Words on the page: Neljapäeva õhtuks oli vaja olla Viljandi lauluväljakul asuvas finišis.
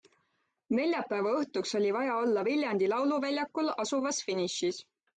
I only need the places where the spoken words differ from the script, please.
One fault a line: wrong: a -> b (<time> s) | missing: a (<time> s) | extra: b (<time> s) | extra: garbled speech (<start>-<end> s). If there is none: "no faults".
no faults